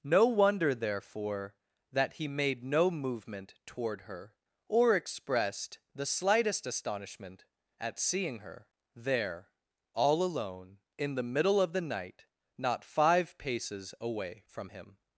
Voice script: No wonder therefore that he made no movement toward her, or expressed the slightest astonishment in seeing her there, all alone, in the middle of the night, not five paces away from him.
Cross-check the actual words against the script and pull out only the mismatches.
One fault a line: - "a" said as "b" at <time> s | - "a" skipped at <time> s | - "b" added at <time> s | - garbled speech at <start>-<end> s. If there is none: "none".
- "in" said as "at" at 7.8 s